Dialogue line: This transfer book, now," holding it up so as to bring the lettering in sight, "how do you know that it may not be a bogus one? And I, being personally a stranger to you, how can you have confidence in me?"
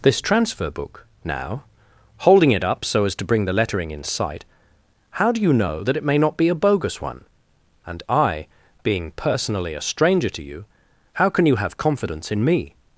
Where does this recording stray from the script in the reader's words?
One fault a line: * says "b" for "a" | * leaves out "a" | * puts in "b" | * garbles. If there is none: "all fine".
all fine